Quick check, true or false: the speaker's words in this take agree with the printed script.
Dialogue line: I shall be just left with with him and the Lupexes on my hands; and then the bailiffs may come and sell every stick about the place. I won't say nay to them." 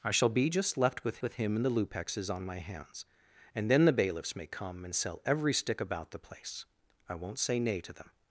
true